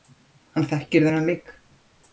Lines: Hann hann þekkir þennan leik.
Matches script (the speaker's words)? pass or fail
fail